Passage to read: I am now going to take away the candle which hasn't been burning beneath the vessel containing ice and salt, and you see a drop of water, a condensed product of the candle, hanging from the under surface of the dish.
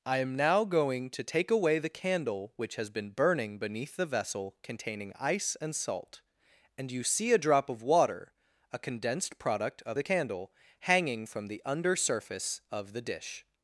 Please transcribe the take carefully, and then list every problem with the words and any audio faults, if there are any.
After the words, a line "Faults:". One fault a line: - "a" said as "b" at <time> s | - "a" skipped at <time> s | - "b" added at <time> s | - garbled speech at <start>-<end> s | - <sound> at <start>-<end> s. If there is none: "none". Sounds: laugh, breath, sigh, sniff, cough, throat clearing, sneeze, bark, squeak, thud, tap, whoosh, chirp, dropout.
I am now going to take away the candle which has been burning beneath the vessel containing ice and salt, and you see a drop of water, a condensed product of the candle, hanging from the under surface of the dish.
Faults:
- "hasn't" said as "has" at 2.8 s